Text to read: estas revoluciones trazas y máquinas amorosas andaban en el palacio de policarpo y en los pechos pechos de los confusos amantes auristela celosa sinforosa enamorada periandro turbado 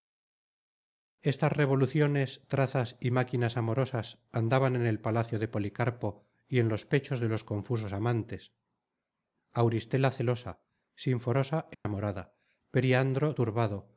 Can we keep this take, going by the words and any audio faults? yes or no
no